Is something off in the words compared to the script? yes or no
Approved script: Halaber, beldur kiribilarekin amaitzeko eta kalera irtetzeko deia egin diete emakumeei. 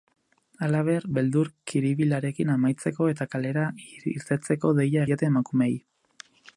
yes